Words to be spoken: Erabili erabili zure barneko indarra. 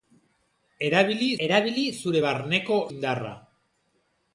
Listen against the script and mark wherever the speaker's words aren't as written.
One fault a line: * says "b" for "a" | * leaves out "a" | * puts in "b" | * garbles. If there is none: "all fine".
all fine